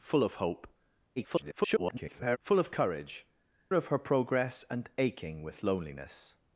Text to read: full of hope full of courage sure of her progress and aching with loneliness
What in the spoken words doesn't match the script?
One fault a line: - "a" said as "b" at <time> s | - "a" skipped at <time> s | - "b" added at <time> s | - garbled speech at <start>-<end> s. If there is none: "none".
- garbled speech at 1.2-2.4 s
- "sure" skipped at 3.3 s